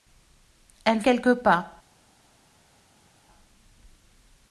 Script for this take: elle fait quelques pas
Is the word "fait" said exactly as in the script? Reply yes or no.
no